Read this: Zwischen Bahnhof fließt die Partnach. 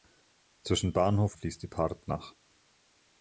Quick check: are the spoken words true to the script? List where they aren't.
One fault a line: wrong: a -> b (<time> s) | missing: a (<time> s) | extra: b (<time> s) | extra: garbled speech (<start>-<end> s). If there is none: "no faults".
no faults